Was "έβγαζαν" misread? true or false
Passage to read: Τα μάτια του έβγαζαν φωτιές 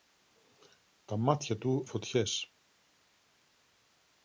true